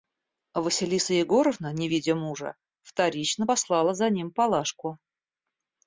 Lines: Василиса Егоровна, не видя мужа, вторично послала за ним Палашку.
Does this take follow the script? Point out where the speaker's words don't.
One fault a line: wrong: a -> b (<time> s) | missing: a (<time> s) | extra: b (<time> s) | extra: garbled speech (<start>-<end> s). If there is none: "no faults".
no faults